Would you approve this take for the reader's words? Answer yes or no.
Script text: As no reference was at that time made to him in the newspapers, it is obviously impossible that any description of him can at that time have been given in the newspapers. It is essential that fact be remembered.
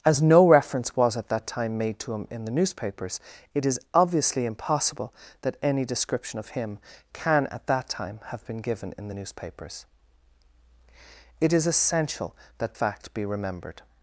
yes